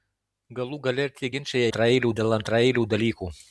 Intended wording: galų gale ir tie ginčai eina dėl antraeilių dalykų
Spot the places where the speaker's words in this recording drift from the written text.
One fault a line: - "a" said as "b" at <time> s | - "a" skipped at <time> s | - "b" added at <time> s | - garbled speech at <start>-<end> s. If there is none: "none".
- "eina" said as "antraeilių" at 1.7 s